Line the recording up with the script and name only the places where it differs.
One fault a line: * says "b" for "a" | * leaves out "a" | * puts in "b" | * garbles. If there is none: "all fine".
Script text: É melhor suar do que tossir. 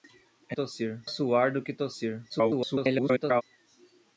* says "tossir" for "melhor"
* garbles